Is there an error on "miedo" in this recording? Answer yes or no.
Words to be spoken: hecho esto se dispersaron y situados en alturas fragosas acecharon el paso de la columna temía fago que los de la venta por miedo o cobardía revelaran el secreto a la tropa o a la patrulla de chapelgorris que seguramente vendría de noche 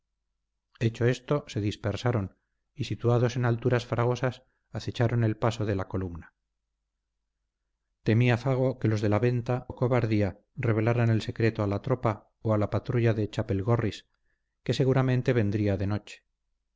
yes